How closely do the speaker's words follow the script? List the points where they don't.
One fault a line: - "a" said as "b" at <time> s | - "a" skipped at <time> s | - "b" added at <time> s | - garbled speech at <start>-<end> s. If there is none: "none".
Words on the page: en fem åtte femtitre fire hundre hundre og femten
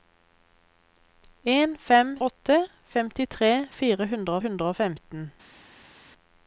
none